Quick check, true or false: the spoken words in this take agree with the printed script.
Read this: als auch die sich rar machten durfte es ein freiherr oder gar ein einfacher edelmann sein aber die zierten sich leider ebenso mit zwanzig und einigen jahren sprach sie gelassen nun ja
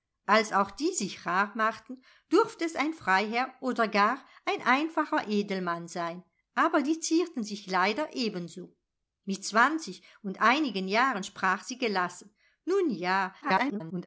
false